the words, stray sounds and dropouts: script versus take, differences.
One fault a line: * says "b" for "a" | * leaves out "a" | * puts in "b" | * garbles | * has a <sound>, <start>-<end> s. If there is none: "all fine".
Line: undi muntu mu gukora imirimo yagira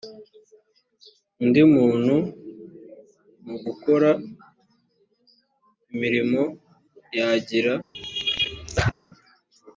* has a laugh, 7.9-8.9 s